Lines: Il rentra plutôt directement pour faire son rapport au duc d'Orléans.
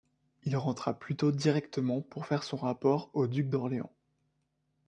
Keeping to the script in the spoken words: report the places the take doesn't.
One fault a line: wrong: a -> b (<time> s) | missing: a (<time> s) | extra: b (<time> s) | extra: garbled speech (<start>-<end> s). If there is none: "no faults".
no faults